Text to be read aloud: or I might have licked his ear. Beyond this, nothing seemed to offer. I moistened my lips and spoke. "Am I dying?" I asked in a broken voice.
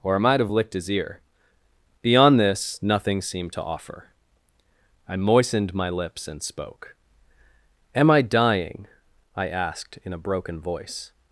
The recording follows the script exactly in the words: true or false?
true